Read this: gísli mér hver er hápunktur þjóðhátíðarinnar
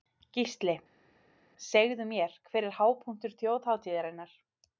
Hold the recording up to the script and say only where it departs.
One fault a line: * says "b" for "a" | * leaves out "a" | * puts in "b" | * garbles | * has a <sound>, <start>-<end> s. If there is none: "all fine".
* puts in "segðu"